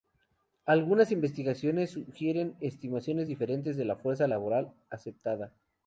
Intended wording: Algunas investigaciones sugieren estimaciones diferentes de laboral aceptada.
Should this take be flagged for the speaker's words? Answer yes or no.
yes